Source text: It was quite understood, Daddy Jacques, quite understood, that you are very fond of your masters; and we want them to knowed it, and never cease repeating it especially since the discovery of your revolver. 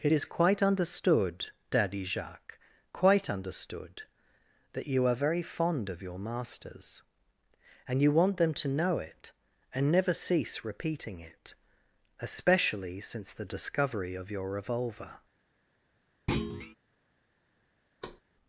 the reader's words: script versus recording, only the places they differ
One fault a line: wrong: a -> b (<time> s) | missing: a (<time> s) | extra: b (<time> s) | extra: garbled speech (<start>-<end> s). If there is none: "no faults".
wrong: was -> is (0.1 s)
wrong: we -> you (8.0 s)
wrong: knowed -> know (8.7 s)